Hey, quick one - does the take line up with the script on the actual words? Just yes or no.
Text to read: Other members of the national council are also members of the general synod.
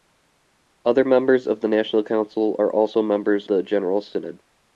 no